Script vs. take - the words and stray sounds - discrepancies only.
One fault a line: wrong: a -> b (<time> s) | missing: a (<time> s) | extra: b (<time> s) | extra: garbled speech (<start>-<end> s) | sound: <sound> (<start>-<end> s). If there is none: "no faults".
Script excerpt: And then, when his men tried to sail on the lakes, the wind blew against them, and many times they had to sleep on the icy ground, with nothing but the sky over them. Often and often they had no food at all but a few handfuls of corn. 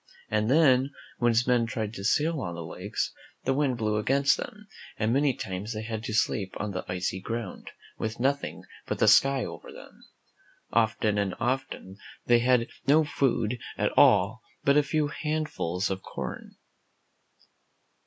no faults